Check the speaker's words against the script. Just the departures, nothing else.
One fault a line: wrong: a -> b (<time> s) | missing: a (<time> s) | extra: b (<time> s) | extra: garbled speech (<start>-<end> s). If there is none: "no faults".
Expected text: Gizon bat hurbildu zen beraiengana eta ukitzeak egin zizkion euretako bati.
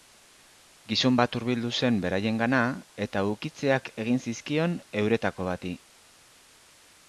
no faults